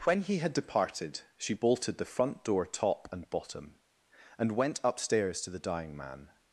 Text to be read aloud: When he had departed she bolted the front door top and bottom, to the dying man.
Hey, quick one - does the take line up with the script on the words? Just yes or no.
no